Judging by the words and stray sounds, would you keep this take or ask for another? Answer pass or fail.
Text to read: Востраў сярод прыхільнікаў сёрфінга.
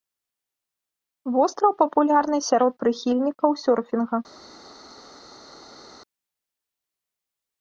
fail